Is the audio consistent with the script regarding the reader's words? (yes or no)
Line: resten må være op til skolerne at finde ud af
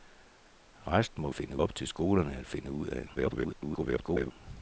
no